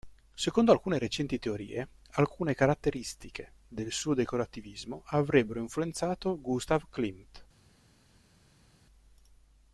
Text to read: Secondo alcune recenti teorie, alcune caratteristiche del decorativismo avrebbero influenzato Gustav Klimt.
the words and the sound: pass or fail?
fail